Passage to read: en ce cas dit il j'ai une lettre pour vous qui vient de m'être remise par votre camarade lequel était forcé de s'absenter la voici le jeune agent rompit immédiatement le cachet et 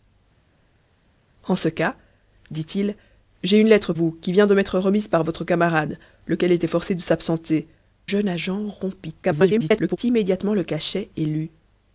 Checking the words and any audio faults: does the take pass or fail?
fail